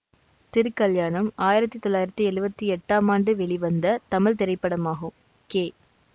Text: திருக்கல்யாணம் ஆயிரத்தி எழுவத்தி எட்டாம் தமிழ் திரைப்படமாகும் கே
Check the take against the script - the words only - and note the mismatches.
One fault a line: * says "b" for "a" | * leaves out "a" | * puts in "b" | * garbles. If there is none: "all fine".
* puts in "தொள்ளாயிரத்தி"
* puts in "ஆண்டு வெளிவந்த"